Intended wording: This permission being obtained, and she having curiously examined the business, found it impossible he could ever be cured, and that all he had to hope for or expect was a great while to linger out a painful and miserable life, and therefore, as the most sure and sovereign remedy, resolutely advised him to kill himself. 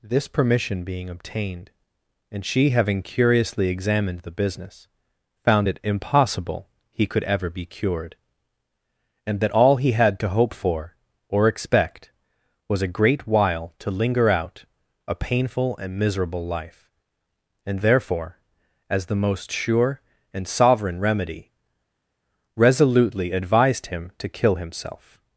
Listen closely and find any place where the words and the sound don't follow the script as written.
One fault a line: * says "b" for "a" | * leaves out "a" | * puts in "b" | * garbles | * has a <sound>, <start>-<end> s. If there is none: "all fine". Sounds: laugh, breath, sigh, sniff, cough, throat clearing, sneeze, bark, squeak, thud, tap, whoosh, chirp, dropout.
all fine